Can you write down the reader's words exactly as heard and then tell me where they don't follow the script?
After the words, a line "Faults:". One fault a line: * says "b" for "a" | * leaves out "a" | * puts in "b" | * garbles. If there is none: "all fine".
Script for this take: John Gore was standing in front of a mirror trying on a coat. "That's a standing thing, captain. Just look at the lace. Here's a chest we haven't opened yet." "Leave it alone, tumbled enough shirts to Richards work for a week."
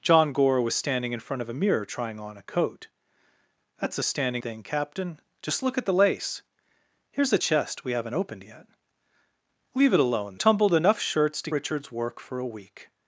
John Gore was standing in front of a mirror trying on a coat. "That's a standing thing, captain. Just look at the lace. Here's a chest we haven't opened yet." "Leave it alone, tumbled enough shirts to Richards work for a week."
Faults:
all fine